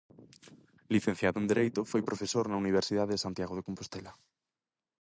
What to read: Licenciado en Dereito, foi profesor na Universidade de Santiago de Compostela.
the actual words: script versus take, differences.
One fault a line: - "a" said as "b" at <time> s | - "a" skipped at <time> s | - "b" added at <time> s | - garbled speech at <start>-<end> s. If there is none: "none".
none